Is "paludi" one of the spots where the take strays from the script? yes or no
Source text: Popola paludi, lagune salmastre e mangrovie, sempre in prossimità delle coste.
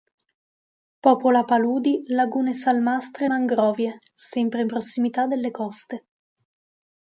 no